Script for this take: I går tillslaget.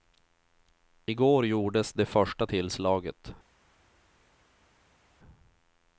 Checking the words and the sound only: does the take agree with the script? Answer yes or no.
no